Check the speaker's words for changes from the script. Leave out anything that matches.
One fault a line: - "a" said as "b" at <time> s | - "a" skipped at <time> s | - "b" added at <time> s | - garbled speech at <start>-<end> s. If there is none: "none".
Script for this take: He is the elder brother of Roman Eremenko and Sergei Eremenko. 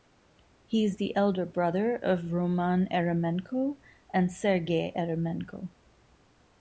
none